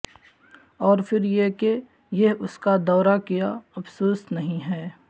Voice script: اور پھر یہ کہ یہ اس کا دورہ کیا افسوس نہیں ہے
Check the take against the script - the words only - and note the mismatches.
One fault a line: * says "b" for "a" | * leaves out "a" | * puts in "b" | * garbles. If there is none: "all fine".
all fine